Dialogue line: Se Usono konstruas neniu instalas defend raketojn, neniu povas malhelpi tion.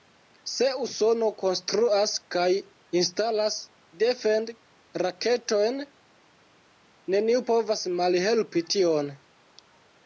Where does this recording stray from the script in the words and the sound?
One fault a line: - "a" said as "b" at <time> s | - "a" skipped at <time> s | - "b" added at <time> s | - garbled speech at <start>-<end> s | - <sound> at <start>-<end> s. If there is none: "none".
- "neniu" said as "kaj" at 2.4 s